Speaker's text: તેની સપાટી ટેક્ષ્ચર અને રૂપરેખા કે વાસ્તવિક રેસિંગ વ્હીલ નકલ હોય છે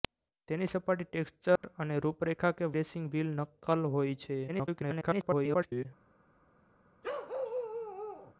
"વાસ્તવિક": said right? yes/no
no